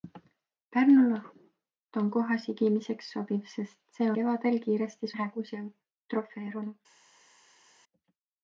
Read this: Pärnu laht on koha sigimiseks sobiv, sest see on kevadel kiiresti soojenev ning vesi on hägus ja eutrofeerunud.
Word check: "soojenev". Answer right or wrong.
wrong